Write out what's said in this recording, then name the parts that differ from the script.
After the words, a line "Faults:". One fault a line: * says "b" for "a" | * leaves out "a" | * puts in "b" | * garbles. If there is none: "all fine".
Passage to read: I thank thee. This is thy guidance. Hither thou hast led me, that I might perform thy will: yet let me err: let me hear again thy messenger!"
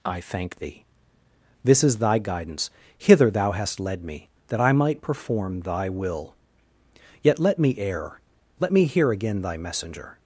I thank thee. This is thy guidance. Hither thou hast led me, that I might perform thy will: yet let me err: let me hear again thy messenger!"
Faults:
all fine